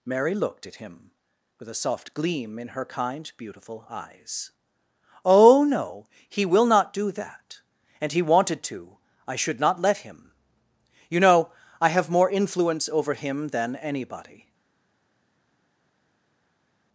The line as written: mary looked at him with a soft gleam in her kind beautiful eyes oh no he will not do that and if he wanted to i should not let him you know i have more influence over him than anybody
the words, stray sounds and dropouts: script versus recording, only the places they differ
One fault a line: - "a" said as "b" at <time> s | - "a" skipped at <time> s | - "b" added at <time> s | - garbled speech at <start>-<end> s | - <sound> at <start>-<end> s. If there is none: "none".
- "if" skipped at 8.1 s